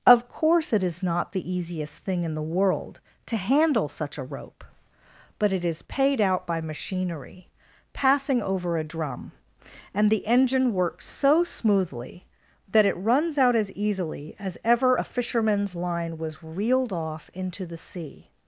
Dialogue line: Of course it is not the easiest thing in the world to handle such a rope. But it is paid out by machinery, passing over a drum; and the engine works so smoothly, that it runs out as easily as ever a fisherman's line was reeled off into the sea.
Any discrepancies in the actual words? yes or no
no